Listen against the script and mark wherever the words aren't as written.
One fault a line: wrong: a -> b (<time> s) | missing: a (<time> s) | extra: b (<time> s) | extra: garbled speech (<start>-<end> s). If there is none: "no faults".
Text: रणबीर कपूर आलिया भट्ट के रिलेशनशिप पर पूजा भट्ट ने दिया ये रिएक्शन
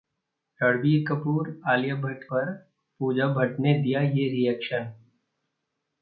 missing: के रिलेशनशिप (2.2 s)